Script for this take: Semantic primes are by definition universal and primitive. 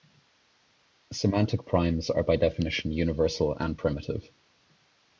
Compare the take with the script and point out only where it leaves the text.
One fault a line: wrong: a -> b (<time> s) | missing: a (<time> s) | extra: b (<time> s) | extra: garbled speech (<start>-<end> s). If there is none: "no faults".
no faults